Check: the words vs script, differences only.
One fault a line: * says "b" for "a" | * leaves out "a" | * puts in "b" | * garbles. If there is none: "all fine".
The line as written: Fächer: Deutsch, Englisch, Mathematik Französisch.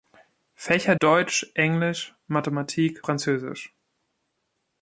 all fine